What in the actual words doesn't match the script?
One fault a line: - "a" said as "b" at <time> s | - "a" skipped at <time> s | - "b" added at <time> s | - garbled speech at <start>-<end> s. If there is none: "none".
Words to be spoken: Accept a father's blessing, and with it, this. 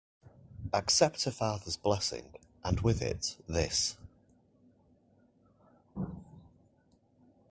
none